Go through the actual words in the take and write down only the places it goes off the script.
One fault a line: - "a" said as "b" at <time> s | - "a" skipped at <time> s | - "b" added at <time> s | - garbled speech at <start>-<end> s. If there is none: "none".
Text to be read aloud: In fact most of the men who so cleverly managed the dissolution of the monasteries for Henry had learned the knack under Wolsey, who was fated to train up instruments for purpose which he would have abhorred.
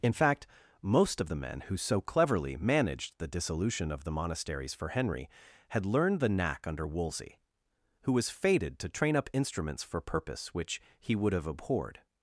none